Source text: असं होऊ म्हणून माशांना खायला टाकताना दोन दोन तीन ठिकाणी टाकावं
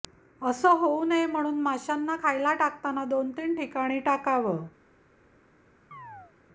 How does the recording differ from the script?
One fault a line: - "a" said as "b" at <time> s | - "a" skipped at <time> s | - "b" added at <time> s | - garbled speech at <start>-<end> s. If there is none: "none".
- "नये" added at 1.0 s
- "दोन" skipped at 3.3 s